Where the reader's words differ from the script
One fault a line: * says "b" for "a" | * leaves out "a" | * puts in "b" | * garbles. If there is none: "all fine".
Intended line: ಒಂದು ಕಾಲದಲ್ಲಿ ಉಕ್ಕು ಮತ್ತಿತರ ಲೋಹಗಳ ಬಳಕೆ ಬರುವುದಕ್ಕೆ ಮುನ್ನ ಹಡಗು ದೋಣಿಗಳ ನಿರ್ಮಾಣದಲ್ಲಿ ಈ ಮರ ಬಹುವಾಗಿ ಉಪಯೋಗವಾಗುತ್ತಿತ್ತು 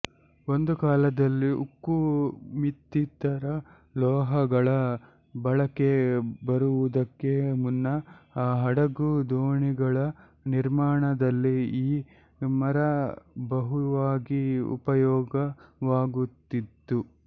all fine